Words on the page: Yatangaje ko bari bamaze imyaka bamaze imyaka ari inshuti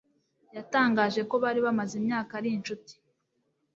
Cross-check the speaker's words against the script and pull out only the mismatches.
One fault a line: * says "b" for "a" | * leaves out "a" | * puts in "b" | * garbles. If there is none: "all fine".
* leaves out "bamaze imyaka"